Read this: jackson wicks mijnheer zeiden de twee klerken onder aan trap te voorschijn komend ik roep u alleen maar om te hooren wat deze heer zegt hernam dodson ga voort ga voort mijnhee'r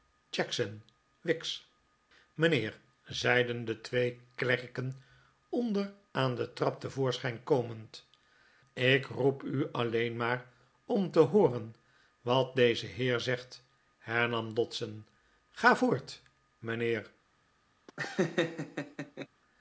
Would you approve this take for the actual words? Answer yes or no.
no